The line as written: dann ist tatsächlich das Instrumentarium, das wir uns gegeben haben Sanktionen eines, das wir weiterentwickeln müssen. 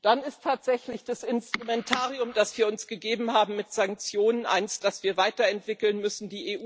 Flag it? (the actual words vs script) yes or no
yes